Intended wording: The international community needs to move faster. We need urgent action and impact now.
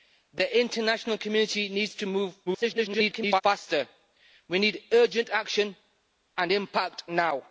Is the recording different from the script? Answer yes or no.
yes